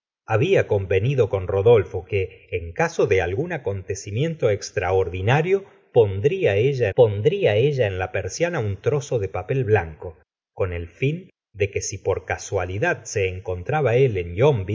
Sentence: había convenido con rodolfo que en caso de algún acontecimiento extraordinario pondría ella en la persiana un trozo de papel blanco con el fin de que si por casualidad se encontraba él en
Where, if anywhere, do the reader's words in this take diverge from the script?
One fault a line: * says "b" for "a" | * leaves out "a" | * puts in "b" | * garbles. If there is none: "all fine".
* puts in "pondría ella"